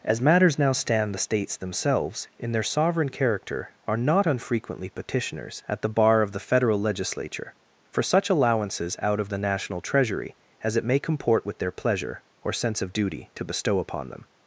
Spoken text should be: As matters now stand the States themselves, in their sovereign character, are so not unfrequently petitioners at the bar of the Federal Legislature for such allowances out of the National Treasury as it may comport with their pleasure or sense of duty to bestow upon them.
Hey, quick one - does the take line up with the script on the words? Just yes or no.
no